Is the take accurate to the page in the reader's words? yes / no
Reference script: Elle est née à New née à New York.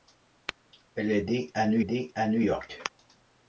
yes